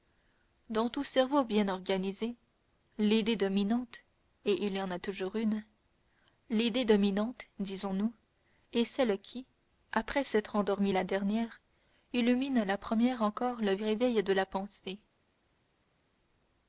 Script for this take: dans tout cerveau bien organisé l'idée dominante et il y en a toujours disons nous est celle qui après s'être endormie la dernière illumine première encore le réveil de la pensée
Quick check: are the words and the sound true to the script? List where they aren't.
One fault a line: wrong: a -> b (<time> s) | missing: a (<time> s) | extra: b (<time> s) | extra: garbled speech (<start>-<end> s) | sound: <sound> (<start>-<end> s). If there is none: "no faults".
extra: une l'idée dominante (5.3 s)
extra: la (12.6 s)